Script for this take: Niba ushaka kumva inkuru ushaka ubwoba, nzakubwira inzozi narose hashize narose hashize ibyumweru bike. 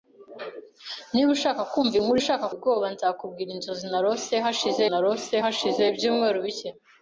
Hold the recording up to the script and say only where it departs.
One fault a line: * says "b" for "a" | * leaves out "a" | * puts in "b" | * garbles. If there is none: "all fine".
all fine